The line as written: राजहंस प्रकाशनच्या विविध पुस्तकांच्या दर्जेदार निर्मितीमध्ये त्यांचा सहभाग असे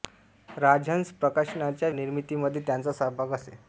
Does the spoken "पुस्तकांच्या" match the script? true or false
false